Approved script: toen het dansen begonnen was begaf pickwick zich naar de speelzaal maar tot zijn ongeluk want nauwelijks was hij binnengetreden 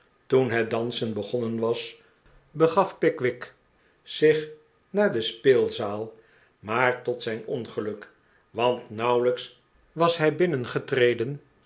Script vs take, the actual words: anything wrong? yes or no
no